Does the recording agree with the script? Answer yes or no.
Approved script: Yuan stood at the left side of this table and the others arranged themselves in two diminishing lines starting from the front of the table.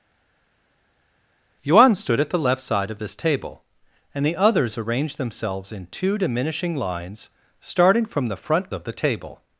yes